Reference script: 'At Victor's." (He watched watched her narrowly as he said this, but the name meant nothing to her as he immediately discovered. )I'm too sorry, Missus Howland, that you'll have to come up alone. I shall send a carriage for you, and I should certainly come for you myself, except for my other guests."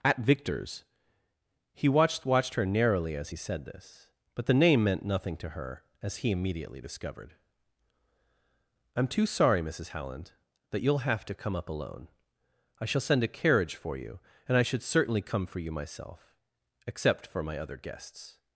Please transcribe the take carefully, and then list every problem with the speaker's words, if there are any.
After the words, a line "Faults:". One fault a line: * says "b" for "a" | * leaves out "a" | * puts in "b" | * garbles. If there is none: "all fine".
'At Victor's." (He watched watched her narrowly as he said this, but the name meant nothing to her as he immediately discovered. )I'm too sorry, Missus Howland, that you'll have to come up alone. I shall send a carriage for you, and I should certainly come for you myself, except for my other guests."
Faults:
all fine